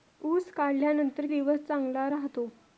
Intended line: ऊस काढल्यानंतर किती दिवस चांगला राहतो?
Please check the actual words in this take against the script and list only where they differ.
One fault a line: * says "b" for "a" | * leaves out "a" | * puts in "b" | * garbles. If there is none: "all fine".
* leaves out "किती"